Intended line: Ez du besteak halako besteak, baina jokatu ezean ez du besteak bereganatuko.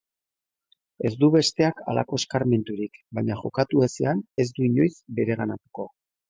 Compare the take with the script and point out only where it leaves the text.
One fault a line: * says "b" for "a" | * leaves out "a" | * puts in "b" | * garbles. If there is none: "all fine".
* says "eskarmenturik" for "besteak"
* says "inoiz" for "besteak"